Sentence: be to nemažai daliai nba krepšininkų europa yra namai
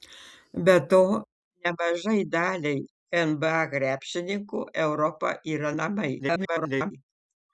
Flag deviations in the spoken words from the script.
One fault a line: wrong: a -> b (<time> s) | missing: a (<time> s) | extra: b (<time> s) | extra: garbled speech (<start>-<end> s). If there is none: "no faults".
extra: garbled speech (6.2-6.9 s)